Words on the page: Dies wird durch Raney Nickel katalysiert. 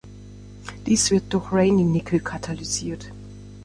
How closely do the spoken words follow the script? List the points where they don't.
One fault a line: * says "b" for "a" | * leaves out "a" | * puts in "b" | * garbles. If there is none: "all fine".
all fine